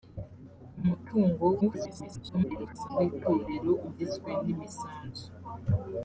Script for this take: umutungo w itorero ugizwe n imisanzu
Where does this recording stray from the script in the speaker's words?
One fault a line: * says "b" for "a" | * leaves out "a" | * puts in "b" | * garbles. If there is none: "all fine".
* garbles